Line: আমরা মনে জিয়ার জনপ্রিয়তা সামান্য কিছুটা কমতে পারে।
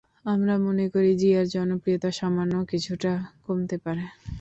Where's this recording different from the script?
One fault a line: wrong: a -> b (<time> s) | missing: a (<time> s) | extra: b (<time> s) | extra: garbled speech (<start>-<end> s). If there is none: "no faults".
extra: করি (0.9 s)